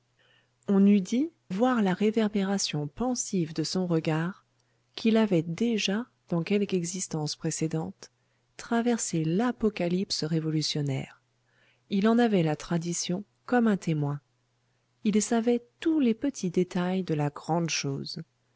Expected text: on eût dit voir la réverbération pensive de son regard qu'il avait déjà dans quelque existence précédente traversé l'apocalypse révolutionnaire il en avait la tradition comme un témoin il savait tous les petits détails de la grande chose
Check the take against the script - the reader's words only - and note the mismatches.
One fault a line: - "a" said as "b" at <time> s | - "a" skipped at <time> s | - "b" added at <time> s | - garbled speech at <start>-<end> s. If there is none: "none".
none